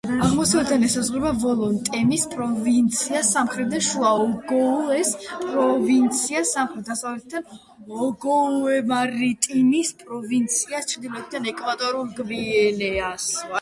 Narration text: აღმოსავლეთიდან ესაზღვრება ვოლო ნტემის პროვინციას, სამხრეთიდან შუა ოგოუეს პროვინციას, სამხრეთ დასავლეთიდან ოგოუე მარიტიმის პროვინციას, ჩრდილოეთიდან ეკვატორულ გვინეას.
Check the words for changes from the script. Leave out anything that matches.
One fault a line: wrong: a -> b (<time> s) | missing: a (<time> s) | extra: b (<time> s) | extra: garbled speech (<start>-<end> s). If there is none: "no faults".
no faults